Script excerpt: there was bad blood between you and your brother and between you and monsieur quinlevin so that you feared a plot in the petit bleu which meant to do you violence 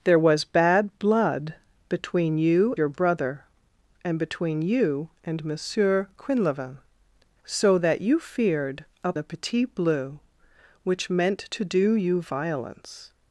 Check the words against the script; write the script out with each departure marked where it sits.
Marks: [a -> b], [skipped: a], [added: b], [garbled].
there was bad blood between you [skipped: and] your brother and between you and monsieur quinlevin so that you feared a [skipped: plot in] the petit bleu which meant to do you violence